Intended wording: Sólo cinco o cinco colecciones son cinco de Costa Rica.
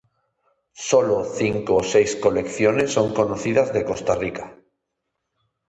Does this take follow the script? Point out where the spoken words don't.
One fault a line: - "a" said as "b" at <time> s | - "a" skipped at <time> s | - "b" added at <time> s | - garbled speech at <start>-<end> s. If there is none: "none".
- "cinco" said as "seis" at 1.9 s
- "cinco" said as "conocidas" at 3.1 s